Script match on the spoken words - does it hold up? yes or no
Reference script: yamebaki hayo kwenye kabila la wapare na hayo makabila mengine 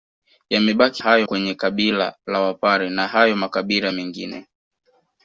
yes